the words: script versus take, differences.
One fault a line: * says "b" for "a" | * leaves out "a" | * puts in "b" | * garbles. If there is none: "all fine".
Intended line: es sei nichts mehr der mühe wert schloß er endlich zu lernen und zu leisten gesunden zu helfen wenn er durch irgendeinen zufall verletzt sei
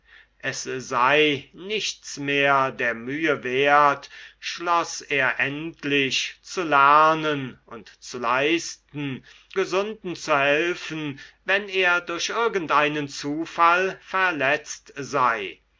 all fine